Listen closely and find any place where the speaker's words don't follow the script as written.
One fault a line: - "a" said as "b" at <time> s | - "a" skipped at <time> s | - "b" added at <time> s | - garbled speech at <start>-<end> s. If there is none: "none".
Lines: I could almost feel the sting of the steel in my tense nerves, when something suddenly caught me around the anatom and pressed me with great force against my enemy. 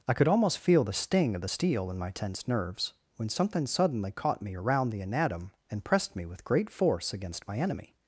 none